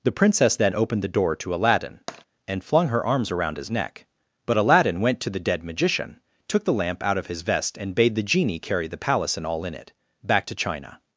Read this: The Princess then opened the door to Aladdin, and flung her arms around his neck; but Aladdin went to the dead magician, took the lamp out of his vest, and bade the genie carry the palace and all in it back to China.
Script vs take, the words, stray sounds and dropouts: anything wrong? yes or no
yes